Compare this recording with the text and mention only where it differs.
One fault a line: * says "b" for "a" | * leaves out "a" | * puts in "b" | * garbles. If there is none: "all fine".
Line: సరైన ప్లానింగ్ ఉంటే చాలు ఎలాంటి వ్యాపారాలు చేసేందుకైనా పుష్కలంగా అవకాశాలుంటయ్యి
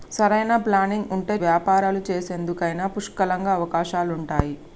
* leaves out "చాలు ఎలాంటి"